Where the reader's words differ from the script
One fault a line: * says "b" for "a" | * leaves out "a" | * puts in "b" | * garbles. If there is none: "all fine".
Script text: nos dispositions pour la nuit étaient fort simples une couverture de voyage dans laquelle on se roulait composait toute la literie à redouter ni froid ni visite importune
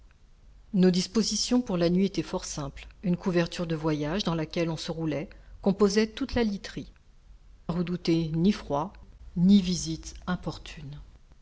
all fine